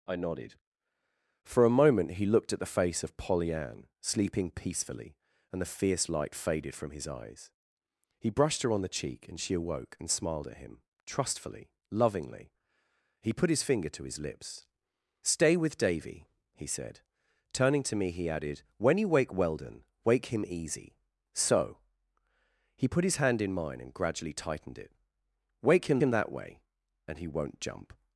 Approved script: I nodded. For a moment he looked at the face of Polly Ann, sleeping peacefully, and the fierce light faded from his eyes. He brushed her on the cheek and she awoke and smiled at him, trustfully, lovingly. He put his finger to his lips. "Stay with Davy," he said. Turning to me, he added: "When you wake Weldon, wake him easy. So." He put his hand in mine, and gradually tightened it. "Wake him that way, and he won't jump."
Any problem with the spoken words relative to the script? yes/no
yes